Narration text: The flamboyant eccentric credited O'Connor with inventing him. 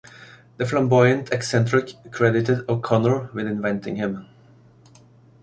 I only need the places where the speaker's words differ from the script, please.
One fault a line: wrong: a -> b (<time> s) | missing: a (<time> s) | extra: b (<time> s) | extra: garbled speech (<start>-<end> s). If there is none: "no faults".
no faults